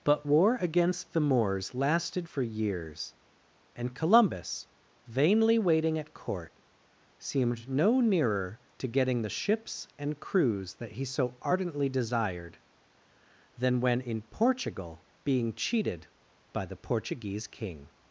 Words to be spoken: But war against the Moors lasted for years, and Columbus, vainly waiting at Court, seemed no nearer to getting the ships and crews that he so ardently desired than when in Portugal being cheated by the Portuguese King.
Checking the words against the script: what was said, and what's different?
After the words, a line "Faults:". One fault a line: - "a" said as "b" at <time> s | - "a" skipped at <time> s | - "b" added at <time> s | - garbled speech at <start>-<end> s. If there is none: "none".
But war against the Moors lasted for years, and Columbus, vainly waiting at Court, seemed no nearer to getting the ships and crews that he so ardently desired than when in Portugal being cheated by the Portuguese King.
Faults:
none